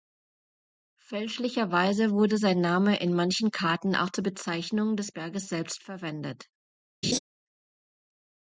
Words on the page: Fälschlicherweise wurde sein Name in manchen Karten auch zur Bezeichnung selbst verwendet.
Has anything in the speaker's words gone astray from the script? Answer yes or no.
yes